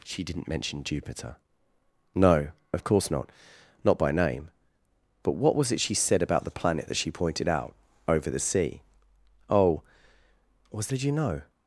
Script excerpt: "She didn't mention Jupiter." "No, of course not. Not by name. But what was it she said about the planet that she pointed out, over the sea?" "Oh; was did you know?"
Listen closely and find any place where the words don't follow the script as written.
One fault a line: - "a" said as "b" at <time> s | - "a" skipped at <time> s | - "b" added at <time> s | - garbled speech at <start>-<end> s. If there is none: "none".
none